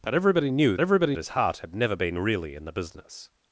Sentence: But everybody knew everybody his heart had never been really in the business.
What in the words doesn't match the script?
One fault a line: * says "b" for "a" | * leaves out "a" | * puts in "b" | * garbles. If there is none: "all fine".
all fine